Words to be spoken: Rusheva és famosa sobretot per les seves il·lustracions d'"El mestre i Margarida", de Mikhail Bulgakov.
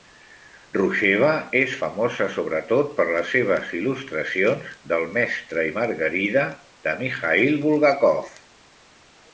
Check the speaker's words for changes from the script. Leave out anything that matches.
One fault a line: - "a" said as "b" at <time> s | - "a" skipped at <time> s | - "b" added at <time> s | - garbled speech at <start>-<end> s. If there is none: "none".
none